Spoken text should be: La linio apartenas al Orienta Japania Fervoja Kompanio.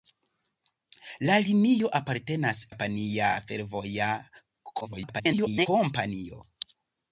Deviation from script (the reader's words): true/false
true